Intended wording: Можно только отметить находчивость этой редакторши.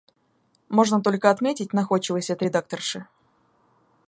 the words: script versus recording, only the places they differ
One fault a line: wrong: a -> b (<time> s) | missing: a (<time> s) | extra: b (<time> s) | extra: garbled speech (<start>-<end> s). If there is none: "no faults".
no faults